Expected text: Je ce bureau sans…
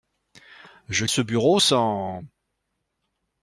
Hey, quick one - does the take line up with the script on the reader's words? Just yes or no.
yes